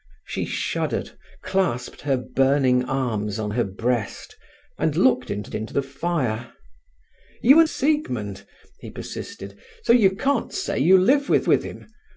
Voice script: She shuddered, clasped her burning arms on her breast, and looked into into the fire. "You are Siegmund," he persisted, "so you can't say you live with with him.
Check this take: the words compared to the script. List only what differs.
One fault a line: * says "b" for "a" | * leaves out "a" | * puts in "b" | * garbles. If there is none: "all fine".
all fine